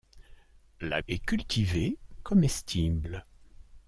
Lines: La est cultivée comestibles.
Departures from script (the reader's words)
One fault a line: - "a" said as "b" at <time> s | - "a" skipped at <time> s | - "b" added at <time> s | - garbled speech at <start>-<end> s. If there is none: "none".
none